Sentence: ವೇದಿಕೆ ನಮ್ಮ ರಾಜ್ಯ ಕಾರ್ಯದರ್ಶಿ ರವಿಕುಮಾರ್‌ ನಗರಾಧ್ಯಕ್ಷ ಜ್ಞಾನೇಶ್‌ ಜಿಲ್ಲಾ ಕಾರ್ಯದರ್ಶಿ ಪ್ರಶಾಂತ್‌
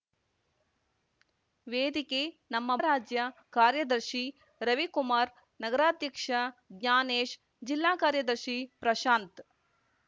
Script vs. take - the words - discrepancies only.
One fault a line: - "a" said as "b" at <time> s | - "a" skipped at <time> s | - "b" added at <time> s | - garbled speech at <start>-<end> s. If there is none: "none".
none